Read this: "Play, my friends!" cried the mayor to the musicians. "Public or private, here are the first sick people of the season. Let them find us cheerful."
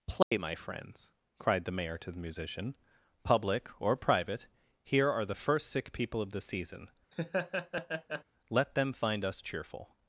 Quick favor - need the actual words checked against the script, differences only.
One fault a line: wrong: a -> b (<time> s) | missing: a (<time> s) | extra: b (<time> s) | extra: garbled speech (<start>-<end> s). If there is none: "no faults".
wrong: musicians -> musician (2.2 s)